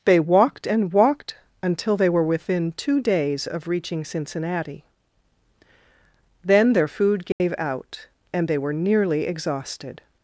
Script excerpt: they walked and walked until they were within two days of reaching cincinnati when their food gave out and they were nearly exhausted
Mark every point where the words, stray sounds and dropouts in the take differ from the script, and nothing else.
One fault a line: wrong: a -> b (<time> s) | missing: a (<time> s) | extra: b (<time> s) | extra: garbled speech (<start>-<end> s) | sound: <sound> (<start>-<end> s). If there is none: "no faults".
wrong: when -> then (6.4 s)
sound: dropout (7.3-7.4 s)